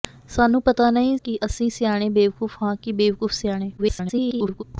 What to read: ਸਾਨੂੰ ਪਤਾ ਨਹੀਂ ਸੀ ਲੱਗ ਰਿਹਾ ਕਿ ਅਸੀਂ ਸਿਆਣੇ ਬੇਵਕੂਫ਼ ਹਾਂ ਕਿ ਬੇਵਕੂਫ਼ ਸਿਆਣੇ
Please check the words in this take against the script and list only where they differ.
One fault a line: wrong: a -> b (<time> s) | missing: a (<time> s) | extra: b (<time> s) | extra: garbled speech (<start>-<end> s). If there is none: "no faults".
missing: ਸੀ ਲੱਗ ਰਿਹਾ (1.2 s)
extra: garbled speech (3.8-4.6 s)